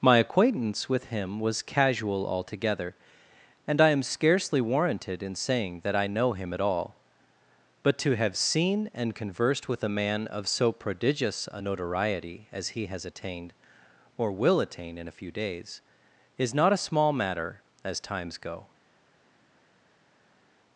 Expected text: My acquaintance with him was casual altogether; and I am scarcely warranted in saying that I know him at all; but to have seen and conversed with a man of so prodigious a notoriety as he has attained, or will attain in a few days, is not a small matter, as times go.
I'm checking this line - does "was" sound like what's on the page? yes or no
yes